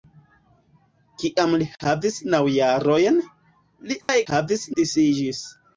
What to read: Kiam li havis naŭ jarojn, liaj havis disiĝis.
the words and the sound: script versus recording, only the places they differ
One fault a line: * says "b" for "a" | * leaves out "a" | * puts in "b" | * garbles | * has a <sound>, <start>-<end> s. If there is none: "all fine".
* has a dropout, 4.0-4.1 s